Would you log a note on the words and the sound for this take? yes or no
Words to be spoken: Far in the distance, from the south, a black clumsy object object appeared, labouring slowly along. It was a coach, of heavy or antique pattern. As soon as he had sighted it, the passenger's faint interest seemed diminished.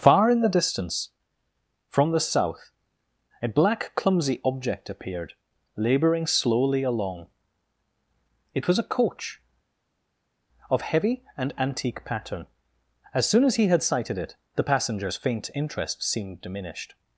yes